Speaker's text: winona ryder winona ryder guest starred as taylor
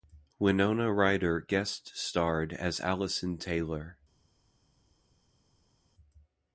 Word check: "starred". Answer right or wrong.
right